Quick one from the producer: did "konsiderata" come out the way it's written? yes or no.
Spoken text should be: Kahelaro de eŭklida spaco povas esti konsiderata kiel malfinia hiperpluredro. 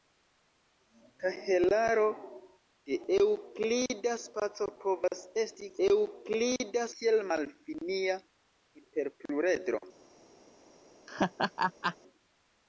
no